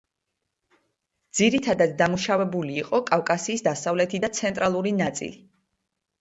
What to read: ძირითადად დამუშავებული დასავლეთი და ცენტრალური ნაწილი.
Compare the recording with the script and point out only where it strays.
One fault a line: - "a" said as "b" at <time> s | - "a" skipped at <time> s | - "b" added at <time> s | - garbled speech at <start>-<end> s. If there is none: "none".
- "იყო კავკასიის" added at 2.8 s